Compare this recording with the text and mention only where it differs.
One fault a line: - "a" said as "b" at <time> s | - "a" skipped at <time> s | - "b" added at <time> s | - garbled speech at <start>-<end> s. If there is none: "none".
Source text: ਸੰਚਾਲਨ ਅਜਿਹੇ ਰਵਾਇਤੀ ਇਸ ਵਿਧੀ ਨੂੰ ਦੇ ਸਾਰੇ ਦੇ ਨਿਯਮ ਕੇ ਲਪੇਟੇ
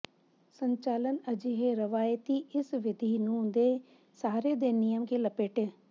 none